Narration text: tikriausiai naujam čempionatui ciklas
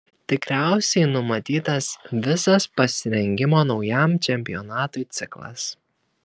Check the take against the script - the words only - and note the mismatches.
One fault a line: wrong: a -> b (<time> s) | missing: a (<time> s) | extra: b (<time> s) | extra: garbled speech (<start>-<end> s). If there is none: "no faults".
extra: numatytas visas pasirengimo (1.1 s)